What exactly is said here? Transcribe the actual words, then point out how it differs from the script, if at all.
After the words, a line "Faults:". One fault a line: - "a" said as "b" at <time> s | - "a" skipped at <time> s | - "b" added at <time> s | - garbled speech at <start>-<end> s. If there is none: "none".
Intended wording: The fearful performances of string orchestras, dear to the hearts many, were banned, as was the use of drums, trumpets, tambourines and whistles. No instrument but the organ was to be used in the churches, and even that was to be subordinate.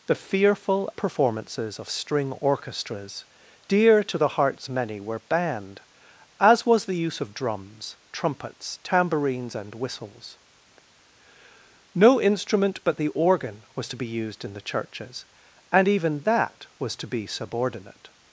The fearful performances of string orchestras, dear to the hearts many, were banned, as was the use of drums, trumpets, tambourines and whistles. No instrument but the organ was to be used in the churches, and even that was to be subordinate.
Faults:
none